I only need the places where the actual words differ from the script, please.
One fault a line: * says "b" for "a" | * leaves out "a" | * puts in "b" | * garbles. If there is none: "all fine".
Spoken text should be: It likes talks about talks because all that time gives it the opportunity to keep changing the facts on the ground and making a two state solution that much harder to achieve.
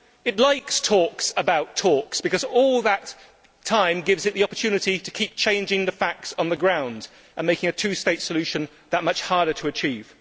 all fine